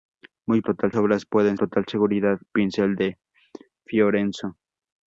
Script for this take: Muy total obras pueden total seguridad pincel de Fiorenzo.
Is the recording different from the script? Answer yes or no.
no